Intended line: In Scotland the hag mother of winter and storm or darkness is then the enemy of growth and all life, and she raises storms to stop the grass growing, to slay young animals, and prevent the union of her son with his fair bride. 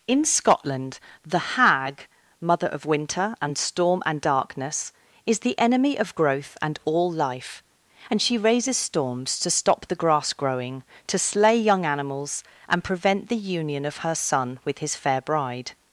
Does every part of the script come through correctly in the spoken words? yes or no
no